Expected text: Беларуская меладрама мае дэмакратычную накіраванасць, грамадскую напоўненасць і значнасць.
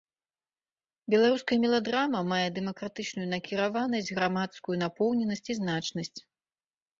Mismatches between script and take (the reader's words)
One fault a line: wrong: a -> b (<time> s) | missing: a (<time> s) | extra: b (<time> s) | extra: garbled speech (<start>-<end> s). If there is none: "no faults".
no faults